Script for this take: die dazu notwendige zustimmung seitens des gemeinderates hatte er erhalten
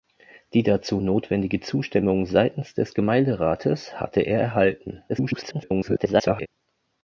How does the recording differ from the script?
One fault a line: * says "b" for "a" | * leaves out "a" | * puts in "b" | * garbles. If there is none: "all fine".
* garbles